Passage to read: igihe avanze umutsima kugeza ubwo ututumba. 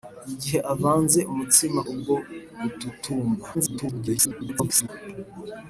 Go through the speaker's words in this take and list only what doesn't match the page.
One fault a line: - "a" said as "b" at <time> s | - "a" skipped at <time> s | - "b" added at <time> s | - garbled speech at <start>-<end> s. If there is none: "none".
- "kugeza" skipped at 1.8 s
- garbled speech at 3.5-4.9 s